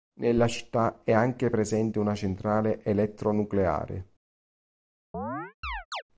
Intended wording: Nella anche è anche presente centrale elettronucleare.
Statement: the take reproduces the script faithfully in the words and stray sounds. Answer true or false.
false